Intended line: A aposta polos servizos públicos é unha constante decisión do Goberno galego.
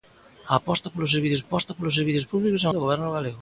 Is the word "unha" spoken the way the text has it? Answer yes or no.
no